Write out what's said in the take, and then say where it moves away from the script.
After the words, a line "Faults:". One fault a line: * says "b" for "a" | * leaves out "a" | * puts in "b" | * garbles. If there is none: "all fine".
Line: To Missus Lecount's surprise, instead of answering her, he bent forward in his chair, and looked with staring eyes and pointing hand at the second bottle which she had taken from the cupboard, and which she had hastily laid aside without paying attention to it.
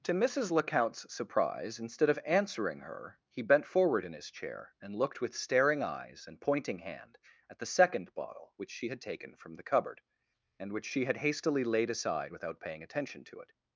To Missus Lecount's surprise, instead of answering her, he bent forward in his chair, and looked with staring eyes and pointing hand at the second bottle which she had taken from the cupboard, and which she had hastily laid aside without paying attention to it.
Faults:
all fine